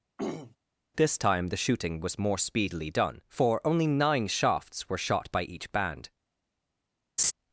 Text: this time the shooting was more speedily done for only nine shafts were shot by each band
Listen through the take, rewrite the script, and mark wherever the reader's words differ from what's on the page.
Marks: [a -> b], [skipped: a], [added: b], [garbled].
this time the shooting was more speedily done for only nine shafts were shot by each band